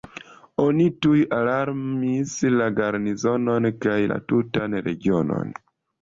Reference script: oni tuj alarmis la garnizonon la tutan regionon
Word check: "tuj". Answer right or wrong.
right